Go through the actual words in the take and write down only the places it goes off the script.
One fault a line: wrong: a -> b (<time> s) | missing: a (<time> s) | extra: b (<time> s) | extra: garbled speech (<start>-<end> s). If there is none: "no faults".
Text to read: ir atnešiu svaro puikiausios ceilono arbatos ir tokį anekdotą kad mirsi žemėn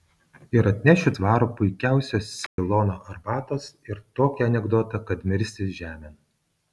no faults